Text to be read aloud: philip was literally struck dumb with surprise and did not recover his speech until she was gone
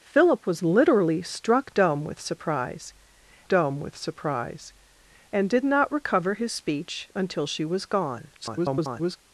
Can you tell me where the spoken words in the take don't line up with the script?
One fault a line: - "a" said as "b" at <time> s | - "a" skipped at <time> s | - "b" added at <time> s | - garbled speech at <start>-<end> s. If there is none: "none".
- "dumb with surprise" added at 3.5 s
- garbled speech at 8.3-9.2 s